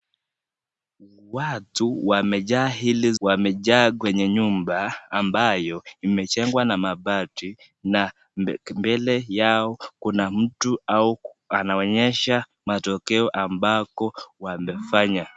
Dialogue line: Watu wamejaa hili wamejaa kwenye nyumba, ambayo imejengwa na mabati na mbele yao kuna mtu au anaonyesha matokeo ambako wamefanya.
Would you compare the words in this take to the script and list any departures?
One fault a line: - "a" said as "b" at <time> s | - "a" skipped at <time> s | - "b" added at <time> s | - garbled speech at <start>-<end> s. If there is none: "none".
none